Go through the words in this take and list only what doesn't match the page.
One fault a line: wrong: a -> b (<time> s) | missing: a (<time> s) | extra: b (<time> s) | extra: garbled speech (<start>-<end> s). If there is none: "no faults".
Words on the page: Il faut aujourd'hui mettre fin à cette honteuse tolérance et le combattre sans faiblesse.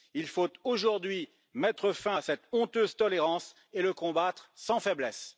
no faults